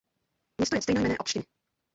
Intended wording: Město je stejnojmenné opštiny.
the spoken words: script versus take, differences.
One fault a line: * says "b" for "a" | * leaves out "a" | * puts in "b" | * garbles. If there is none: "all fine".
all fine